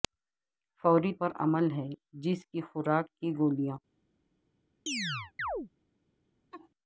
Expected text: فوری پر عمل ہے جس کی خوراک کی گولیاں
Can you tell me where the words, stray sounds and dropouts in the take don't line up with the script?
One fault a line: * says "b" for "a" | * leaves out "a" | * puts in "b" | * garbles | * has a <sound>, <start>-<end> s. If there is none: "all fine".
* has a chirp, 4.9-5.7 s
* has a laugh, 6.5-6.7 s